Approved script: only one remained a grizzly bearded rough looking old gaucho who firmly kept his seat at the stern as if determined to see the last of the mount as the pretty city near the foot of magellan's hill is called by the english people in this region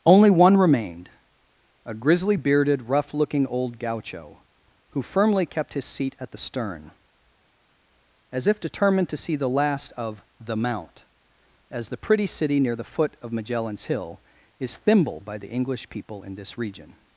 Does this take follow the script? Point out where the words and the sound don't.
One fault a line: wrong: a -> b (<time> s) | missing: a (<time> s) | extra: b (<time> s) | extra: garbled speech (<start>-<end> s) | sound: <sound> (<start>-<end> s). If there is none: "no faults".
wrong: called -> thimble (14.8 s)